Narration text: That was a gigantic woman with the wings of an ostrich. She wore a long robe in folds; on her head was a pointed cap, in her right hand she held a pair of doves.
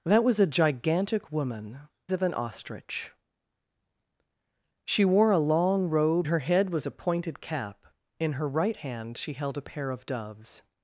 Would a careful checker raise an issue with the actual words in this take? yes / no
yes